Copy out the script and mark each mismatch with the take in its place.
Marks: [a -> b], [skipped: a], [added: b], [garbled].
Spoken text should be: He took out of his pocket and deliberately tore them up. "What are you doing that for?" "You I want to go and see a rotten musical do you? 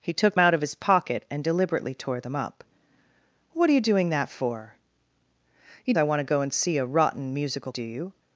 He took out of his pocket and deliberately tore them up. "What are you doing that for?" "You I want to go and see a rotten musical do you?